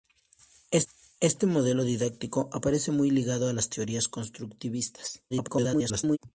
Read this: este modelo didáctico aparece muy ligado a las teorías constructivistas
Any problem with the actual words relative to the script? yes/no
yes